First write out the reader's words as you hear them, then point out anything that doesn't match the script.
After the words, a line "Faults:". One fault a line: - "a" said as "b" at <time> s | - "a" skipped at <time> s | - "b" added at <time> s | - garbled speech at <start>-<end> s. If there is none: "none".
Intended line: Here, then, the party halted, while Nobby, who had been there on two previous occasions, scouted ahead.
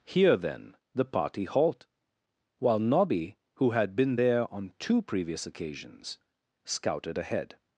Here, then, the party halt, while Nobby, who had been there on two previous occasions, scouted ahead.
Faults:
- "halted" said as "halt" at 1.4 s